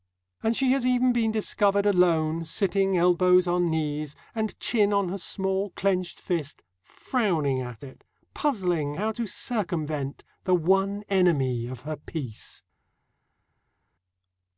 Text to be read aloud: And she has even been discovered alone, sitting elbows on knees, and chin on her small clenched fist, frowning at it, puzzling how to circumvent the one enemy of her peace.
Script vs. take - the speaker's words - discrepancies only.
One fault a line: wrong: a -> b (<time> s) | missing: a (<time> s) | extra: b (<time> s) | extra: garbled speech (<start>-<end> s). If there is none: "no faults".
no faults